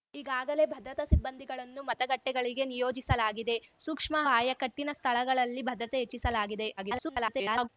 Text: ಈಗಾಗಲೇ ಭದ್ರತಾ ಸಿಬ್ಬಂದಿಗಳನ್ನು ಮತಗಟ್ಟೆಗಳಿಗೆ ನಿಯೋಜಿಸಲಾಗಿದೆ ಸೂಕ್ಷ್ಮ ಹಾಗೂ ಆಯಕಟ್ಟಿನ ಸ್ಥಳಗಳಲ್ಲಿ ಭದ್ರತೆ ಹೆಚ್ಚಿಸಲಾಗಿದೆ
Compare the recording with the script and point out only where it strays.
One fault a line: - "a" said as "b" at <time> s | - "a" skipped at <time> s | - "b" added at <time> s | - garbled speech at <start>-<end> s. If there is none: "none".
- "ಹಾಗೂ" skipped at 4.2 s
- garbled speech at 6.8-7.7 s